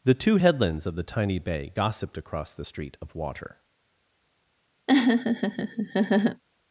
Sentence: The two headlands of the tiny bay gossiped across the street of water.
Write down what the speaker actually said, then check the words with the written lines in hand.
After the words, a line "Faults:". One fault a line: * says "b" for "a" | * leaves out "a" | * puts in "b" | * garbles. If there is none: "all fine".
The two headlands of the tiny bay gossiped across the street of water.
Faults:
all fine